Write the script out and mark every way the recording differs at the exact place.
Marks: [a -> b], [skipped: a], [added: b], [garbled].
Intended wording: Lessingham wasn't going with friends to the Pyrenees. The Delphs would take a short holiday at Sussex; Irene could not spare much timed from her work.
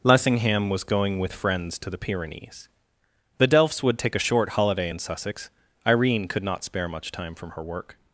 Lessingham [wasn't -> was] going with friends to the Pyrenees. The Delphs would take a short holiday [at -> in] Sussex; Irene could not spare much [timed -> time] from her work.